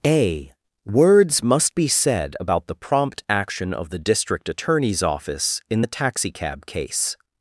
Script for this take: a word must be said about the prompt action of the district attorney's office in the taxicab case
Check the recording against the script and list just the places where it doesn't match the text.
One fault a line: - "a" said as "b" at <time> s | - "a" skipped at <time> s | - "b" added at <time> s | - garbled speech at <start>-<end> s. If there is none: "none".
- "word" said as "words" at 0.9 s